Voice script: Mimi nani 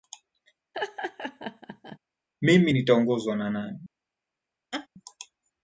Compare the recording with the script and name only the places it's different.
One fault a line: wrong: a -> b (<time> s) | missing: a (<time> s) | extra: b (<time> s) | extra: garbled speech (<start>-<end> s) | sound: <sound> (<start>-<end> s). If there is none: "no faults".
sound: laugh (0.7-2.0 s)
extra: nitaongozwa na (2.7 s)
sound: laugh (4.7-4.9 s)